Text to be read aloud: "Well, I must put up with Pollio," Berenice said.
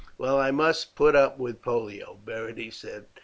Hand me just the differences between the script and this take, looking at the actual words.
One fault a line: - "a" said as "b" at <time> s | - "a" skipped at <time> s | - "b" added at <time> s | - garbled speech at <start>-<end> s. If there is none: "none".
none